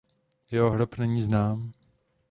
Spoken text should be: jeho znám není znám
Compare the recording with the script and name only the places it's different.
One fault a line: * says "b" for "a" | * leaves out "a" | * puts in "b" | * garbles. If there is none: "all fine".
* says "hrob" for "znám"